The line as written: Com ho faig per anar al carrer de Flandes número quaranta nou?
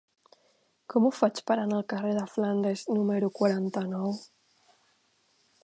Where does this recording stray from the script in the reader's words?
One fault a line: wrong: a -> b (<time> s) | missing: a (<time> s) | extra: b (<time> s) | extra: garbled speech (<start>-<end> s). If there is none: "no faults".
no faults